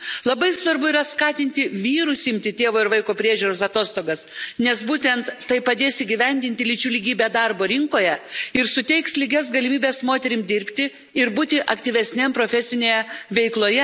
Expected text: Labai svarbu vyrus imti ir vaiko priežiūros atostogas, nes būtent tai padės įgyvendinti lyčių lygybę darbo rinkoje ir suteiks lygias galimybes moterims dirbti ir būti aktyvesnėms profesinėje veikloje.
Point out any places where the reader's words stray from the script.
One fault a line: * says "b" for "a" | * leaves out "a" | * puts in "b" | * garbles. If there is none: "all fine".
* puts in "yra skatinti"
* puts in "tėvo"